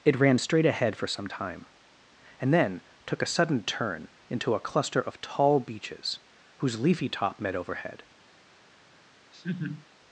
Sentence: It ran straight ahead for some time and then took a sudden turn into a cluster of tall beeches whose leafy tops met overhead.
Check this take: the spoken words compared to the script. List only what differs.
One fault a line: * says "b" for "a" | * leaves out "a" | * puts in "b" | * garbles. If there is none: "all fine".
* says "top" for "tops"